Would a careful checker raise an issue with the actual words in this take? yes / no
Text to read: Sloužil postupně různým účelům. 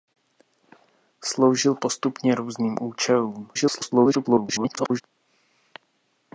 yes